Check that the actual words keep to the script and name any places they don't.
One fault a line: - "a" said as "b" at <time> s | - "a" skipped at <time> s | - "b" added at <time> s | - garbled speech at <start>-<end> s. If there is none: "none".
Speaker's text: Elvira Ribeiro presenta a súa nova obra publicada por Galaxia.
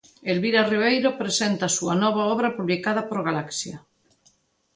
none